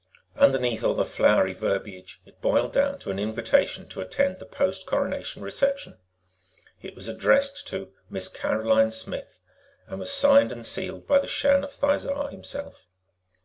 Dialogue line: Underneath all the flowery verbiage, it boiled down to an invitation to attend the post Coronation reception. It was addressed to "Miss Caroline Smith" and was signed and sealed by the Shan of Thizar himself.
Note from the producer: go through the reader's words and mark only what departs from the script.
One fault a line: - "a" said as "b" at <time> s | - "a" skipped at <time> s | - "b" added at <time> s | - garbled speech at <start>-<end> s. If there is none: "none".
none